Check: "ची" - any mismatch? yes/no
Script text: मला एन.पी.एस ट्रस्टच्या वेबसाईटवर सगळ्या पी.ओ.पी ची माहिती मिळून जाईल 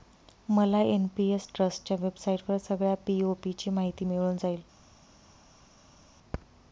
no